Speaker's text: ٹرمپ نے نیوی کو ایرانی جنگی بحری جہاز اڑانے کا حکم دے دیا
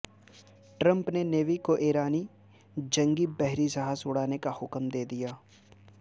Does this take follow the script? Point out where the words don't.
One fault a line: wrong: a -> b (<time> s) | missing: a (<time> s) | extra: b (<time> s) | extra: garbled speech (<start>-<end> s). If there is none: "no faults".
no faults